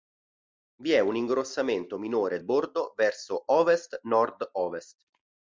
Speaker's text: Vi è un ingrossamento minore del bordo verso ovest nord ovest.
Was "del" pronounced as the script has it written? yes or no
no